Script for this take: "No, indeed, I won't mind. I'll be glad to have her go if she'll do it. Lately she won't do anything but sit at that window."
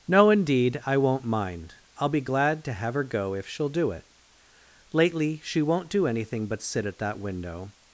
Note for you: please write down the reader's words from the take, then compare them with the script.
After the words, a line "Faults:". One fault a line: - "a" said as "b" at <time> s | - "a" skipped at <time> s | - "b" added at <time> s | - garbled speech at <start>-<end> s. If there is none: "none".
"No, indeed, I won't mind. I'll be glad to have her go if she'll do it. Lately she won't do anything but sit at that window."
Faults:
none